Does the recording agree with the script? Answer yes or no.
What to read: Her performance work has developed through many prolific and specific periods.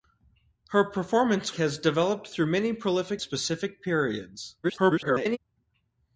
no